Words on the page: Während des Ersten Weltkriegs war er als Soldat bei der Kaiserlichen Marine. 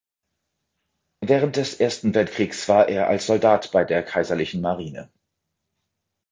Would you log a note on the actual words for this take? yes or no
no